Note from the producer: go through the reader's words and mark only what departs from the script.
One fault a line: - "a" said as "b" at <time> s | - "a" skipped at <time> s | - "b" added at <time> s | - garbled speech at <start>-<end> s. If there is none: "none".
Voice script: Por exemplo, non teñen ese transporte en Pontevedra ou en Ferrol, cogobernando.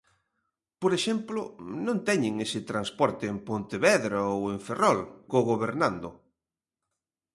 none